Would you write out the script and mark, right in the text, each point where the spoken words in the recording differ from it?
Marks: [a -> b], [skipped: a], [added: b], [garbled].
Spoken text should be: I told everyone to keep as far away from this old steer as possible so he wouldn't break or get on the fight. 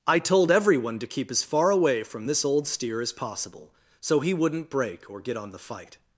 I told everyone to keep as far away from this old steer as possible so he wouldn't break or get on the fight.